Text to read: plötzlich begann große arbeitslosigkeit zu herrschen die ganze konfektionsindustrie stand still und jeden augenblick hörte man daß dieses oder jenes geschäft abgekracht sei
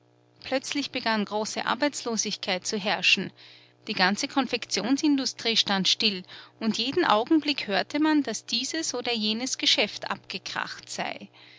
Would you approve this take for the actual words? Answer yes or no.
yes